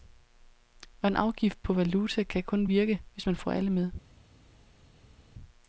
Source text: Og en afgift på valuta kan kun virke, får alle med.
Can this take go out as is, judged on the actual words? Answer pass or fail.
fail